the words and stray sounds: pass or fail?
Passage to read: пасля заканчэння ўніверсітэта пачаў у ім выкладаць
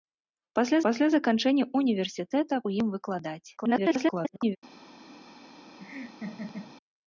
fail